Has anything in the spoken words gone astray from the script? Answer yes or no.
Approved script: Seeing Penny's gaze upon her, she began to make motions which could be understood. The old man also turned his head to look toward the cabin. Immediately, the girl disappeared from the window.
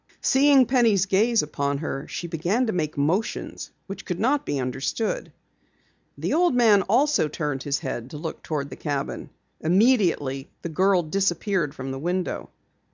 yes